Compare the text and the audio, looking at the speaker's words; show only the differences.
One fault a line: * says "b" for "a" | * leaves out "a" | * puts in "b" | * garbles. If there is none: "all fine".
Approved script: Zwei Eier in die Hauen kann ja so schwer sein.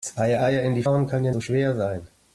all fine